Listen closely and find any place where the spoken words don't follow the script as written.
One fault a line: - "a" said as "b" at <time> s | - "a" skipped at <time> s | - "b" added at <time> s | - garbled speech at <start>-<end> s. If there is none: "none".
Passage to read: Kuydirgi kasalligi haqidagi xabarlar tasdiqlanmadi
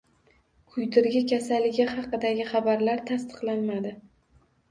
none